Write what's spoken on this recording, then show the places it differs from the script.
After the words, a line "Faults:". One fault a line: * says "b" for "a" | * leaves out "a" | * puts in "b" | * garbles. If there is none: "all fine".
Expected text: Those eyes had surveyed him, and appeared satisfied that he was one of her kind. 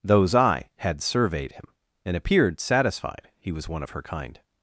Those eye had surveyed him, and appeared satisfied he was one of her kind.
Faults:
* says "eye" for "eyes"
* leaves out "that"